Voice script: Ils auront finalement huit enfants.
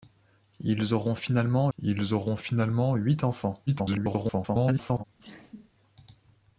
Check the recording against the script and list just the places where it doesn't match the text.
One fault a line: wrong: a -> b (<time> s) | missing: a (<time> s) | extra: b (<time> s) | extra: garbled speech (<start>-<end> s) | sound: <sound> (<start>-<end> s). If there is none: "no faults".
extra: ils auront finalement (1.8 s)
extra: garbled speech (3.7-5.0 s)
sound: sneeze (5.2-5.7 s)